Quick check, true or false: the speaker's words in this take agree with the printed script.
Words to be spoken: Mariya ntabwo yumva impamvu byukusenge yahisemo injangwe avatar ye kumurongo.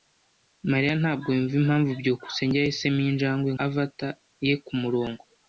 true